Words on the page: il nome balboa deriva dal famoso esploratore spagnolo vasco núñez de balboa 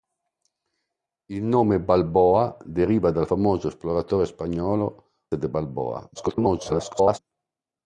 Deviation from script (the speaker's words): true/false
true